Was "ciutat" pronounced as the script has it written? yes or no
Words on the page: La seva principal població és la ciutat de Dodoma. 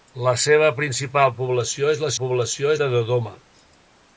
no